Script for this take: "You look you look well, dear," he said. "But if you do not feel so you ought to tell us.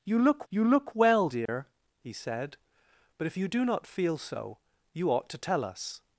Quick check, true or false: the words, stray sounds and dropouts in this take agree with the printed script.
false